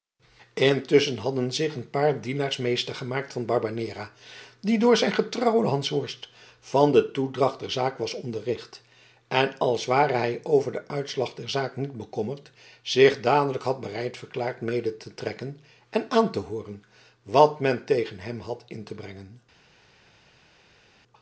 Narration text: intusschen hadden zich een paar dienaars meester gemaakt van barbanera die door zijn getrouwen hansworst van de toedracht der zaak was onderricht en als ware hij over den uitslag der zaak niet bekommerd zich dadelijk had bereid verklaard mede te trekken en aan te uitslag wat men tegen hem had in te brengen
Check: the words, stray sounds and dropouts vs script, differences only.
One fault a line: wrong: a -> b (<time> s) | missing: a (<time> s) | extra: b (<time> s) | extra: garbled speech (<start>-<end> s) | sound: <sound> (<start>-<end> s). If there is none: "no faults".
wrong: uitslag -> hooren (16.4 s)